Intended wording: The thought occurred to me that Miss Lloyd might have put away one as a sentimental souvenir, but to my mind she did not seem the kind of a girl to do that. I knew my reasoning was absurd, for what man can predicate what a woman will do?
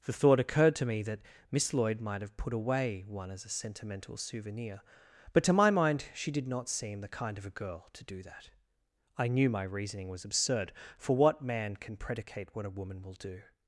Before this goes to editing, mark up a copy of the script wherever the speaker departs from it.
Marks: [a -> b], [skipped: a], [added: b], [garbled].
The thought occurred to me that Miss Lloyd might have put away one as a sentimental souvenir, but to my mind she did not seem the kind of a girl to do that. I knew my reasoning was absurd, for what man can predicate what a woman will do?